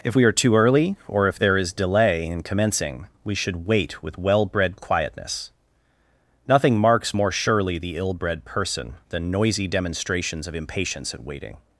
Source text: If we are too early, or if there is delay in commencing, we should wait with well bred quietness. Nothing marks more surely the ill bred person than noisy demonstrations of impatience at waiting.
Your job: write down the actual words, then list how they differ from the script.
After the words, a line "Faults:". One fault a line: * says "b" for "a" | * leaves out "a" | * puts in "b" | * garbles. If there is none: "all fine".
If we are too early, or if there is delay in commencing, we should wait with well bred quietness. Nothing marks more surely the ill bred person than noisy demonstrations of impatience at waiting.
Faults:
all fine